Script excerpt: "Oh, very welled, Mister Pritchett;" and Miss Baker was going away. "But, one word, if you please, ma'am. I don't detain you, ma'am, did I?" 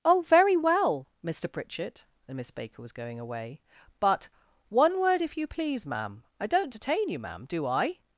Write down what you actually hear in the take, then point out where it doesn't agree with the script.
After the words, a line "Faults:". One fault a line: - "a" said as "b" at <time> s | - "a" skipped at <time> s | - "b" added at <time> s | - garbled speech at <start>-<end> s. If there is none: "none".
"Oh, very well, Mister Pritchett;" and Miss Baker was going away. "But, one word, if you please, ma'am. I don't detain you, ma'am, do I?"
Faults:
- "welled" said as "well" at 0.6 s
- "did" said as "do" at 7.5 s